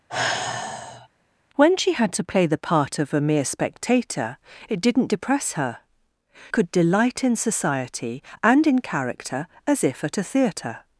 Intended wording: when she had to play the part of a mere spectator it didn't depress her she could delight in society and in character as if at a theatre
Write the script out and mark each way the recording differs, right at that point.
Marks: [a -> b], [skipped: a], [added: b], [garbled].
when she had to play the part of a mere spectator it didn't depress her [skipped: she] could delight in society and in character as if at a theatre